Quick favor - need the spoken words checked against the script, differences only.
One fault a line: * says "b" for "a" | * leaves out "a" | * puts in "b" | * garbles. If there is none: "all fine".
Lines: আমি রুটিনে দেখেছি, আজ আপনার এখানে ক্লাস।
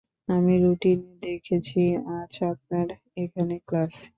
all fine